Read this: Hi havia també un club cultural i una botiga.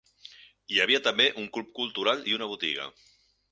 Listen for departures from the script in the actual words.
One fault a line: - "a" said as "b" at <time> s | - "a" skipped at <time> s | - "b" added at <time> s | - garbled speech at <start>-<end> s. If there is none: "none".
none